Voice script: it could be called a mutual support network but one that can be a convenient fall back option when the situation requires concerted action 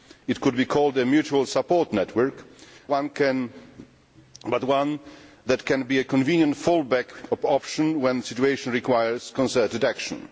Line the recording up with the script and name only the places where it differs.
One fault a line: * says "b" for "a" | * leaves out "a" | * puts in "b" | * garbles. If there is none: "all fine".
* leaves out "but"